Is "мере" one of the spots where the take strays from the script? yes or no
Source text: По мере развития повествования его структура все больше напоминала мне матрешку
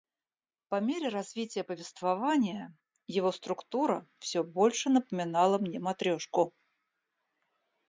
no